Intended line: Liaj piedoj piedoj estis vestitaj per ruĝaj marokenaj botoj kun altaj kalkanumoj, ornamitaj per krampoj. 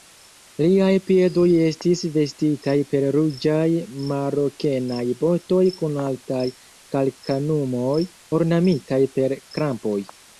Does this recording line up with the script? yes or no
no